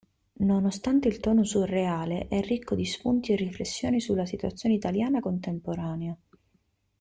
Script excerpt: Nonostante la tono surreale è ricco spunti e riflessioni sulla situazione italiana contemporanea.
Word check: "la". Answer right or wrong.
wrong